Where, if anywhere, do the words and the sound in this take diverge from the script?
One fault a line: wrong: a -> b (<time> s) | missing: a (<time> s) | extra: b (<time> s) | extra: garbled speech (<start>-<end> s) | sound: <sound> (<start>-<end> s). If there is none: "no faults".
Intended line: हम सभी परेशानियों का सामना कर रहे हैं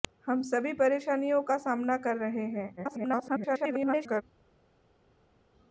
extra: garbled speech (2.8-4.2 s)